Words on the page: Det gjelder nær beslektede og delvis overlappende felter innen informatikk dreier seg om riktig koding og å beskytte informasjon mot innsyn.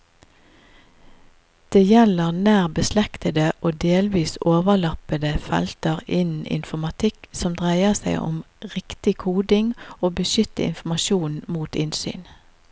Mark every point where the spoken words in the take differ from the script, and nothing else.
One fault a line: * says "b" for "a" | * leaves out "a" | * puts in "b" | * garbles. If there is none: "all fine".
* puts in "som"